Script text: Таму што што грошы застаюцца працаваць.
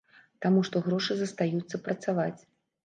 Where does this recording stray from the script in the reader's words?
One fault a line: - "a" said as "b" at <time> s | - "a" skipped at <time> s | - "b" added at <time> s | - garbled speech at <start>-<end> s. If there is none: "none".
- "што" skipped at 0.8 s